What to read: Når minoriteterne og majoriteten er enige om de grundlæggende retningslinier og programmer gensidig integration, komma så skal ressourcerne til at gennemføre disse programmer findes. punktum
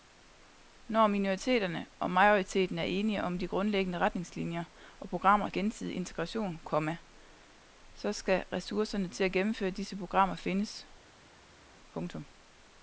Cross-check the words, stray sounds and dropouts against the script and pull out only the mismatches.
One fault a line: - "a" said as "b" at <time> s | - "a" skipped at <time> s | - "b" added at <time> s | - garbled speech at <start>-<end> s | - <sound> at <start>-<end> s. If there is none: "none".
none